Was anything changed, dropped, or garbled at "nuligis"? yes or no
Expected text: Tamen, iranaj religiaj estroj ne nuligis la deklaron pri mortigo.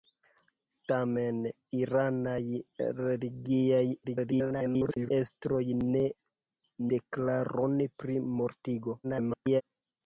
yes